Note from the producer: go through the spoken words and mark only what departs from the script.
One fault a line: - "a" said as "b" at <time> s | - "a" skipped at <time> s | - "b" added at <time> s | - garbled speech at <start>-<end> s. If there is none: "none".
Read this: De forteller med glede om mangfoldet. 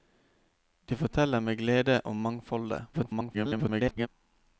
- garbled speech at 2.9-4.1 s